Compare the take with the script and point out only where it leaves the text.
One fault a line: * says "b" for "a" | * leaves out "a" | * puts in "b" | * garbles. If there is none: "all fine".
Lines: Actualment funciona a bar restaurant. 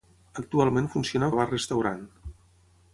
all fine